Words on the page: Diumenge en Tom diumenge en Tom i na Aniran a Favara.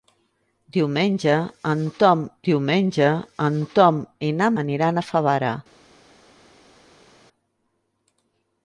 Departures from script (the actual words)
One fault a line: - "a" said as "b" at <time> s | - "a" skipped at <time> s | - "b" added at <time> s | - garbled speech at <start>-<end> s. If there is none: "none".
none